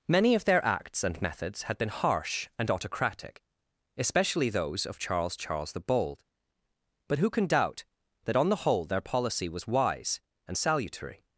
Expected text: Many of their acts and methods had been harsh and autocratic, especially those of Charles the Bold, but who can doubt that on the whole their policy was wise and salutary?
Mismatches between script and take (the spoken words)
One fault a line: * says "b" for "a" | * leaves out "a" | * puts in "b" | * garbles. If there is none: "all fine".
* puts in "Charles"